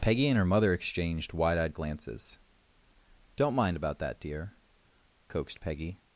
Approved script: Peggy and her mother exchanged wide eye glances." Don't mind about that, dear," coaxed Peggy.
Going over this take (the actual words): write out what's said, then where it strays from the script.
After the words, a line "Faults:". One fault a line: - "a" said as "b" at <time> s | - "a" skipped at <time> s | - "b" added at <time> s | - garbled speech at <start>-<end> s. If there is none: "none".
Peggy and her mother exchanged wide eyed glances." Don't mind about that, dear," coaxed Peggy.
Faults:
- "eye" said as "eyed" at 1.6 s